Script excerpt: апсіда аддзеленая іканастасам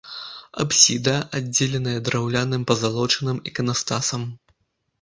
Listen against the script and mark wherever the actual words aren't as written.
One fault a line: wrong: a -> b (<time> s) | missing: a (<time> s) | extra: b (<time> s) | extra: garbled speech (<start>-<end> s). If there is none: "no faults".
extra: драўляным пазалочаным (2.1 s)